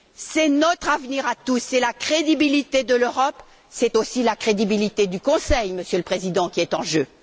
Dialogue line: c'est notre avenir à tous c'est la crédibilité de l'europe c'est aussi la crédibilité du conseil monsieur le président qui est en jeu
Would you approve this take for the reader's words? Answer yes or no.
yes